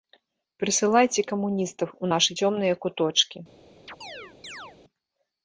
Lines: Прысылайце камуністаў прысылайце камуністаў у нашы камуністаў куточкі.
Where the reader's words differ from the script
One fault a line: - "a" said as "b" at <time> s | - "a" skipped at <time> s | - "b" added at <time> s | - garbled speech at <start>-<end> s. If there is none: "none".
- "прысылайце камуністаў" skipped at 1.9 s
- "камуністаў" said as "цёмныя" at 2.4 s